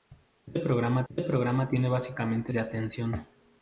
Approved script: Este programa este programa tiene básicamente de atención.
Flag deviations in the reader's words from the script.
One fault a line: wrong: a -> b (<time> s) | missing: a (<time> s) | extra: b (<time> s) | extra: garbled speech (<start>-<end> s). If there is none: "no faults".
no faults